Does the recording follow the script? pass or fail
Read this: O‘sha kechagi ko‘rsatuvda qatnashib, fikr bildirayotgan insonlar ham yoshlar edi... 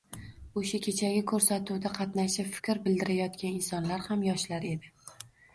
pass